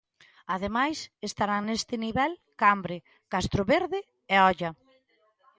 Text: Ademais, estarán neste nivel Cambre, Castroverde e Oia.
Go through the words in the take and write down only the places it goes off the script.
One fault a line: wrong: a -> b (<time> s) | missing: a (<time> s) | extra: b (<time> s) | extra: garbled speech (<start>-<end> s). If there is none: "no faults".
no faults